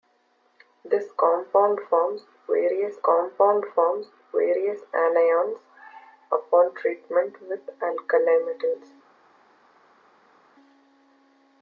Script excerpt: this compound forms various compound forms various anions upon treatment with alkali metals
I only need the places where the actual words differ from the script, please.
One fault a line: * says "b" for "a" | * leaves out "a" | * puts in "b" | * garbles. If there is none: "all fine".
all fine